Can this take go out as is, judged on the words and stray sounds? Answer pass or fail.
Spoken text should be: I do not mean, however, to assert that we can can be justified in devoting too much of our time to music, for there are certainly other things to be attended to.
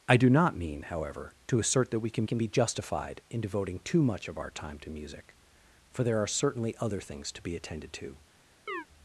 fail